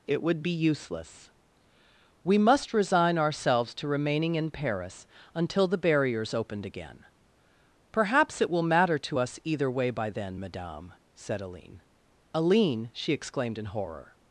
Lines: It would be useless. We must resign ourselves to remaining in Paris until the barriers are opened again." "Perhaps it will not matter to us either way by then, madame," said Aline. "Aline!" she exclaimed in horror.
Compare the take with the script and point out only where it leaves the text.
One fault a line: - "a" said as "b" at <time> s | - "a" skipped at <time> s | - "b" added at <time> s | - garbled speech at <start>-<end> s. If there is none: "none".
- "are" skipped at 6.3 s
- "not" skipped at 8.6 s